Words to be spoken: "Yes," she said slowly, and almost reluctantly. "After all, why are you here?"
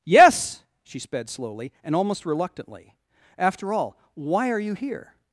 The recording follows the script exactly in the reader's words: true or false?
false